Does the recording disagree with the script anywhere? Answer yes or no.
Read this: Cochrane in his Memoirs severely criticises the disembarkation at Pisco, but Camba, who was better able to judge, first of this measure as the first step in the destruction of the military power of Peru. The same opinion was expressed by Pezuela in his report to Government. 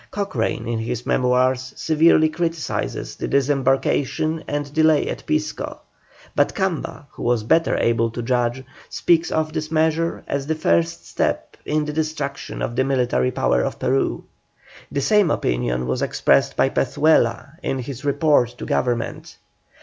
yes